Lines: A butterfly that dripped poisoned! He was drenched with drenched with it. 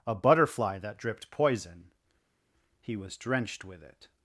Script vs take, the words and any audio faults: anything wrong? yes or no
yes